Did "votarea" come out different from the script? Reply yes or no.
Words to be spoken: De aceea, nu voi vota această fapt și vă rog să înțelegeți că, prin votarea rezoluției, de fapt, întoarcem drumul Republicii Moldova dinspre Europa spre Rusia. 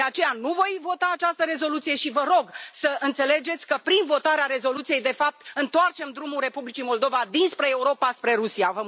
no